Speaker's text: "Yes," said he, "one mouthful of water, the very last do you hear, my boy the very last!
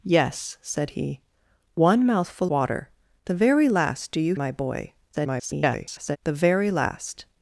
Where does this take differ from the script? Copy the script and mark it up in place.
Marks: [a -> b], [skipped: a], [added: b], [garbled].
"Yes," said he, "one mouthful [skipped: of] water, the very last do you [skipped: hear,] my boy [garbled] the very last!